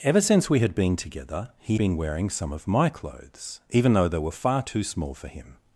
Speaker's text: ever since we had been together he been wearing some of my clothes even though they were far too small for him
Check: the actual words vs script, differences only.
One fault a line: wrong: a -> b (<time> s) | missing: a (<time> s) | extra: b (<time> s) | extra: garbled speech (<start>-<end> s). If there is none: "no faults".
no faults